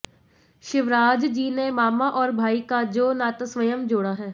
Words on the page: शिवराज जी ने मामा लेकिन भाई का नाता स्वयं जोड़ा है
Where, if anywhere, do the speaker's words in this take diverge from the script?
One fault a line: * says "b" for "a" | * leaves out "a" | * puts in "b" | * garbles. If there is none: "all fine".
* says "और" for "लेकिन"
* puts in "जो"